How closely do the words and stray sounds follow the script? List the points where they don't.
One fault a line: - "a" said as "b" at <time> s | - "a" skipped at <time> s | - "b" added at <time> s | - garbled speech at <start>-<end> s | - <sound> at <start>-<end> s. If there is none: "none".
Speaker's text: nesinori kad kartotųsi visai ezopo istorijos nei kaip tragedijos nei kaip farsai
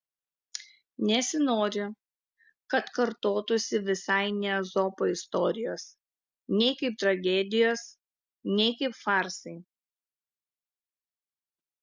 - "ne" added at 4.4 s